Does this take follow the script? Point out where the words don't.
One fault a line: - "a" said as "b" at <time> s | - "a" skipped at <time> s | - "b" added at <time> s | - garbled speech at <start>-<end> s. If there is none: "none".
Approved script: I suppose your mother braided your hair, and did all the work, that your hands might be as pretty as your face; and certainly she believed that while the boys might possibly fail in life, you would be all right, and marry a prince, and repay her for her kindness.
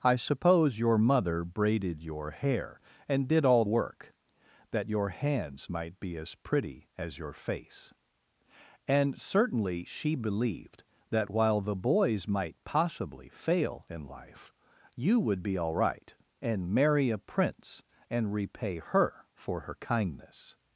- "the" skipped at 3.6 s